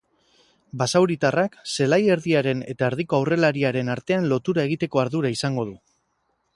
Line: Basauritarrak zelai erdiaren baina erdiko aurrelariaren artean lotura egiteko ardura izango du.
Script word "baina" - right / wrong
wrong